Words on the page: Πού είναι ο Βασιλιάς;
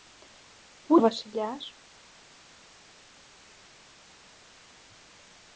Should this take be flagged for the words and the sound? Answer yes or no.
yes